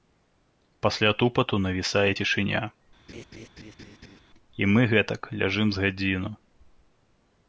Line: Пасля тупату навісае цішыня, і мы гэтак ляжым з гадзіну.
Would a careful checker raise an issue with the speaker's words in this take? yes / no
no